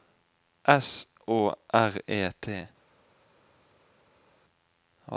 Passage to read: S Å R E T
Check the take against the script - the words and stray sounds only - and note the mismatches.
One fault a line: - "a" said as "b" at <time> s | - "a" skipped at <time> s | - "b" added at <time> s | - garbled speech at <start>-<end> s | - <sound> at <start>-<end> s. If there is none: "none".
none